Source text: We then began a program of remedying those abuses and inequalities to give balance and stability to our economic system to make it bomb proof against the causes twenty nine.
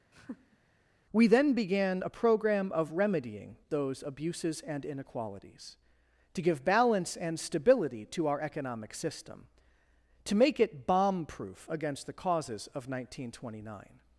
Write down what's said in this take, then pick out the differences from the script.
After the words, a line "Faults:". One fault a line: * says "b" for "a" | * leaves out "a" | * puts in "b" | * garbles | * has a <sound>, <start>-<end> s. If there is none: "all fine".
We then began a program of remedying those abuses and inequalities to give balance and stability to our economic system to make it bomb proof against the causes of nineteen twenty nine.
Faults:
* has a laugh, 0.1-0.6 s
* puts in "of nineteen"